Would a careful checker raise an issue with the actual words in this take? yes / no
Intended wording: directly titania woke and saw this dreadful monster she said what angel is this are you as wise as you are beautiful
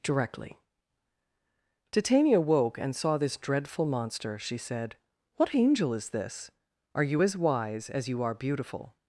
no